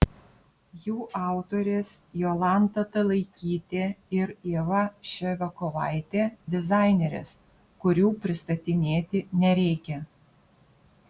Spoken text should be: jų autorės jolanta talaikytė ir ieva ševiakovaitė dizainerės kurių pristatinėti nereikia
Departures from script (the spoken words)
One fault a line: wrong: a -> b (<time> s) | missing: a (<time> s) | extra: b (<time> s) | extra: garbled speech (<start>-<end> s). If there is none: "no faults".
no faults